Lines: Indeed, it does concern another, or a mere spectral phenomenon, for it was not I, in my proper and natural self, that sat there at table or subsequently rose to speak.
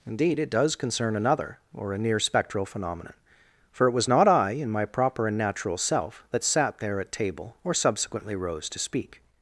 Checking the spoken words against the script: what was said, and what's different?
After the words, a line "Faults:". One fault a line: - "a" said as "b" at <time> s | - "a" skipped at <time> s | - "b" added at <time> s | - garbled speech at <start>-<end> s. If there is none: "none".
Indeed, it does concern another, or a near spectral phenomenon, for it was not I, in my proper and natural self, that sat there at table or subsequently rose to speak.
Faults:
- "mere" said as "near" at 2.0 s